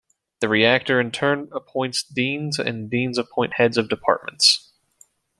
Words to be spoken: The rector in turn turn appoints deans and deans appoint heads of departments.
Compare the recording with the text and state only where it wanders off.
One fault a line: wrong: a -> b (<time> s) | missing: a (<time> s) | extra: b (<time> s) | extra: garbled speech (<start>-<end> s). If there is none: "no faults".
missing: turn (1.5 s)